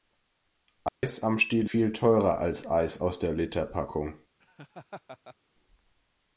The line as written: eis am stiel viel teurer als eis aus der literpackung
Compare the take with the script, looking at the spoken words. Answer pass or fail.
pass